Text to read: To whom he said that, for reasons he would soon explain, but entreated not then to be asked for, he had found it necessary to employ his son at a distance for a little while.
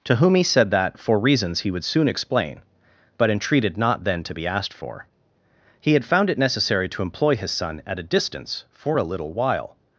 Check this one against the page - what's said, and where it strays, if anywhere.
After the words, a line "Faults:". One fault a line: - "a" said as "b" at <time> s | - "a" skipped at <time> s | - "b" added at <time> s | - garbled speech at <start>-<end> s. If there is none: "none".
To whom he said that, for reasons he would soon explain, but entreated not then to be asked for, he had found it necessary to employ his son at a distance for a little while.
Faults:
none